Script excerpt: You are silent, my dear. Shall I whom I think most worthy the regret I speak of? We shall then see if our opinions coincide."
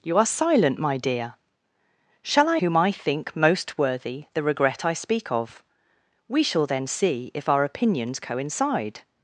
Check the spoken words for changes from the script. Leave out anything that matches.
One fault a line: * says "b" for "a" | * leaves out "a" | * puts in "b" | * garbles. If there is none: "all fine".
all fine